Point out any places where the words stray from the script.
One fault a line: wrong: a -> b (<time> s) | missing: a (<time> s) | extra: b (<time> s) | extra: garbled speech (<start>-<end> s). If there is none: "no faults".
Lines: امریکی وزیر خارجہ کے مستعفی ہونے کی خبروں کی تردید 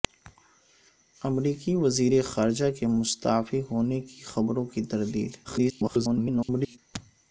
extra: garbled speech (5.4-6.8 s)